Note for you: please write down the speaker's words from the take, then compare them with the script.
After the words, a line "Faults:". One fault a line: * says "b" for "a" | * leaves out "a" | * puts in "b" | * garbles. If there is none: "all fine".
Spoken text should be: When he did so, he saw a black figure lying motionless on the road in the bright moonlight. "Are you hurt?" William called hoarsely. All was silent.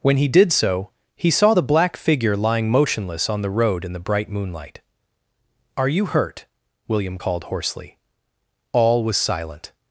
When he did so, he saw the black figure lying motionless on the road in the bright moonlight. "Are you hurt?" William called hoarsely. All was silent.
Faults:
* says "the" for "a"